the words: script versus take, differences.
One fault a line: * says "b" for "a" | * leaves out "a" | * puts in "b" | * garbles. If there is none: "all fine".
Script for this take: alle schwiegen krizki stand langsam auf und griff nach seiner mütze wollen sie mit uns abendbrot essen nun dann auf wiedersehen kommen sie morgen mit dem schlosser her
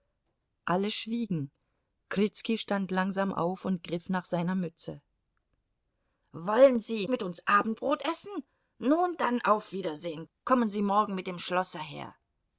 all fine